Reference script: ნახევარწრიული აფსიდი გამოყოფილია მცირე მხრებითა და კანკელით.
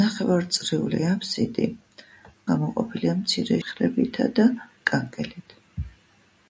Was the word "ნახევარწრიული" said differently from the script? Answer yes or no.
no